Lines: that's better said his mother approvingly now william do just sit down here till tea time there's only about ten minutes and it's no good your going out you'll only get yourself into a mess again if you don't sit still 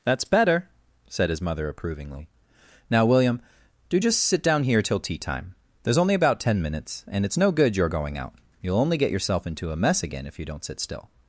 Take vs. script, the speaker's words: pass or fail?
pass